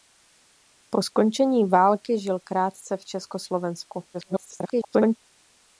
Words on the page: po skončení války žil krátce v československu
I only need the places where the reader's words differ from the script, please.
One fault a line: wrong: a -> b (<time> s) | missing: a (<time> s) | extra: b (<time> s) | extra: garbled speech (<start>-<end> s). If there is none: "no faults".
extra: garbled speech (4.1-5.2 s)